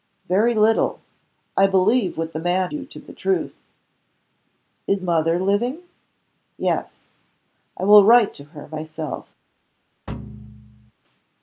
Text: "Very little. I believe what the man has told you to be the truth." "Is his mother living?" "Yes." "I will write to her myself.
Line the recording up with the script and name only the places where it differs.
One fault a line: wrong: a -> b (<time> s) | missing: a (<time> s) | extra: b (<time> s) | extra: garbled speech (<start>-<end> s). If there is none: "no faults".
missing: has told (2.7 s)
missing: be (3.0 s)
missing: his (5.0 s)